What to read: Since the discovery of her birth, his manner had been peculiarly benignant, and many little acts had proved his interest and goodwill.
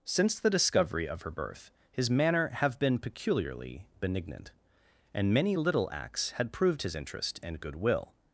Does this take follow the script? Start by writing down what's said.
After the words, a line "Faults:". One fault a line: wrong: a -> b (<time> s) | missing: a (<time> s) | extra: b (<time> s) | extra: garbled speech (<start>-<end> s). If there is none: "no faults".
Since the discovery of her birth, his manner have been peculiarly benignant, and many little acts had proved his interest and goodwill.
Faults:
wrong: had -> have (2.5 s)